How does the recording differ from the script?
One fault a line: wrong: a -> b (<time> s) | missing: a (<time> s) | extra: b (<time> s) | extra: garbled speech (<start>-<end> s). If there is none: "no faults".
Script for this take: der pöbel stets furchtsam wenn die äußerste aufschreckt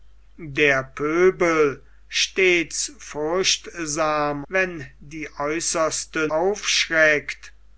no faults